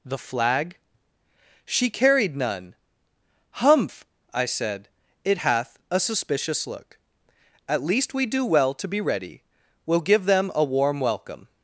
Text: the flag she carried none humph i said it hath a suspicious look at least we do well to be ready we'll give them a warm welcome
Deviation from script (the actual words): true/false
false